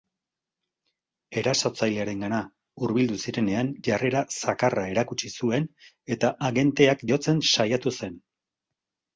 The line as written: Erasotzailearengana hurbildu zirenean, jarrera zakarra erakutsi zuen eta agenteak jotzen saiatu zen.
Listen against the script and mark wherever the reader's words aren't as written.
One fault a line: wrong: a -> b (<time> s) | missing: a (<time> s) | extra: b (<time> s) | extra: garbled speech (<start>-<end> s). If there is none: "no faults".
no faults